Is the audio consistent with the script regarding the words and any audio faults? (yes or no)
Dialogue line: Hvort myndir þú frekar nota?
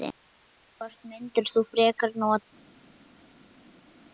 yes